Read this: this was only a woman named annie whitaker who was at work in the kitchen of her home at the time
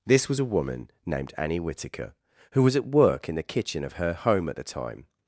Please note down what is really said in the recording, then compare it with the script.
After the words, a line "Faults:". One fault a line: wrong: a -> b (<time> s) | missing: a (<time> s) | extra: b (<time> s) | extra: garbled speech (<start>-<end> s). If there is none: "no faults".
this was a woman named annie whitaker who was at work in the kitchen of her home at the time
Faults:
missing: only (0.4 s)